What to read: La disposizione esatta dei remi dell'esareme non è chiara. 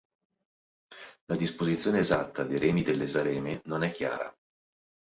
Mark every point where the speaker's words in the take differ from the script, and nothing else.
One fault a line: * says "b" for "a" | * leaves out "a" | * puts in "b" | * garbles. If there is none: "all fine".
all fine